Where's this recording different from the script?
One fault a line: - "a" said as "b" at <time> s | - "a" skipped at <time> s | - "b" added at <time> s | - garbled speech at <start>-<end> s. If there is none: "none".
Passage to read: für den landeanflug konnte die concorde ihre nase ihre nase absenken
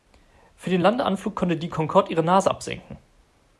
- "ihre nase" skipped at 2.5 s